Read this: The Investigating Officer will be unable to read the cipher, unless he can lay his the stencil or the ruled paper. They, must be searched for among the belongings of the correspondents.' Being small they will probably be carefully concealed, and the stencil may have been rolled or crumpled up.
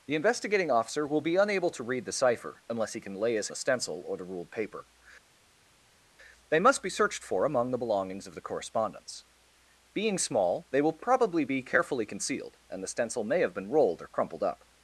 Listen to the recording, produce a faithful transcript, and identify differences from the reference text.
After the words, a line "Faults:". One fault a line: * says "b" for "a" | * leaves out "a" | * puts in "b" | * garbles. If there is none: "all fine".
The Investigating Officer will be unable to read the cipher, unless he can lay his the stencil or the ruled paper. They, must be searched for among the belongings of the correspondents.' Being small they will probably be carefully concealed, and the stencil may have been rolled or crumpled up.
Faults:
all fine